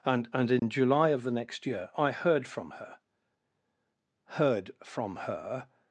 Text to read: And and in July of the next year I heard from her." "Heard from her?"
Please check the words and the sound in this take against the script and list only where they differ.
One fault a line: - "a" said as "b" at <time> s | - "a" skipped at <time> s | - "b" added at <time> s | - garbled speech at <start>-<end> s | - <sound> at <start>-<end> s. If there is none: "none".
- dropout at 0.6-0.6 s